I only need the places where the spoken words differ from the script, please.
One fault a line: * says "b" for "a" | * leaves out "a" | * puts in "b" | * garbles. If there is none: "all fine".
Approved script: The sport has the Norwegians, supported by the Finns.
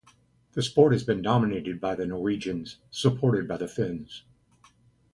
* puts in "been dominated by"